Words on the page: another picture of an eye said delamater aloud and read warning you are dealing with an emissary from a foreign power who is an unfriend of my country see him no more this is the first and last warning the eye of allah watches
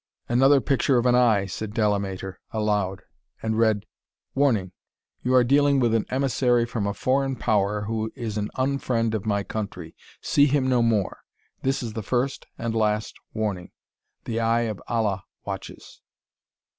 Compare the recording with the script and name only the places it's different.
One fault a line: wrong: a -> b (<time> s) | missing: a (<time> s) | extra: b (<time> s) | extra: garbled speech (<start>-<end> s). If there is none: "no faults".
no faults